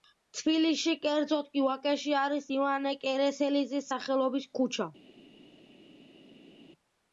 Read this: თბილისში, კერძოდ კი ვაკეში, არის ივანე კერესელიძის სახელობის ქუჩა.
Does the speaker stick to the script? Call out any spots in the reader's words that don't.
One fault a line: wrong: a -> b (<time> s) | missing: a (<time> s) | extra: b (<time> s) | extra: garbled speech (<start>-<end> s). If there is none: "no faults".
no faults